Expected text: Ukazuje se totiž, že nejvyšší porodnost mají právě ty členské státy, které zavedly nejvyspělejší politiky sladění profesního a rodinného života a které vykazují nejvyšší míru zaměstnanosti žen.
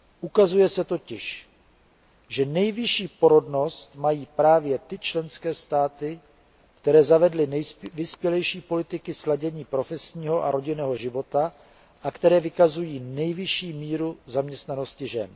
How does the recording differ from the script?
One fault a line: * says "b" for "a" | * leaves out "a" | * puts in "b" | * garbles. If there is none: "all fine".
all fine